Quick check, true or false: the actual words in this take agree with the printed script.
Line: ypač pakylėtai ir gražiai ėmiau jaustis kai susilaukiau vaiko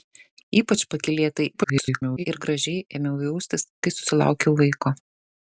false